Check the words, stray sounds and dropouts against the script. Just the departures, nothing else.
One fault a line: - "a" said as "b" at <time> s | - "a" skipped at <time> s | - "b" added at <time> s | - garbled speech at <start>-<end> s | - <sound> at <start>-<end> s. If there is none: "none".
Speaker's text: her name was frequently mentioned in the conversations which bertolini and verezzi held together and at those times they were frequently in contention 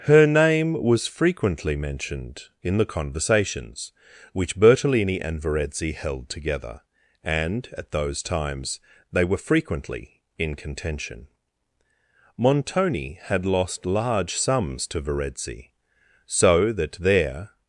- "montoni had lost large sums to verezzi so that there" added at 12.4 s